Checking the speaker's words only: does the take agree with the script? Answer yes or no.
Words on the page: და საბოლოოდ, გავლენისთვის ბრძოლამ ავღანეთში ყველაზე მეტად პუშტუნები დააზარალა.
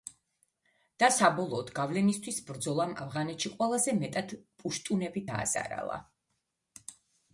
yes